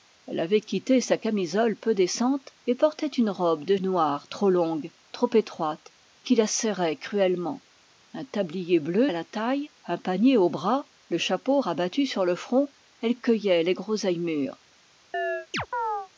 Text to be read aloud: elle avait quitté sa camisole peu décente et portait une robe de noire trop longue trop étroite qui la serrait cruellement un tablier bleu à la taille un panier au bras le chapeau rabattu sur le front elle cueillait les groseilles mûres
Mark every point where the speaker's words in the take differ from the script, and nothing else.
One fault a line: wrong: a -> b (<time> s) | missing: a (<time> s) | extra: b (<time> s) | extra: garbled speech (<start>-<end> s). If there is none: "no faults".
no faults